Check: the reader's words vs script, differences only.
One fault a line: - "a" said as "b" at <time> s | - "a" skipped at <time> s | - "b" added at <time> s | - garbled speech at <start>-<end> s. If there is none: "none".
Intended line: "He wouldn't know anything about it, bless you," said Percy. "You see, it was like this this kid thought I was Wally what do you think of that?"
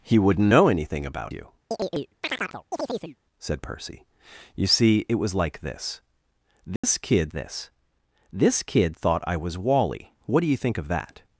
- "it bless" skipped at 1.3 s
- "this this kid" added at 7.3 s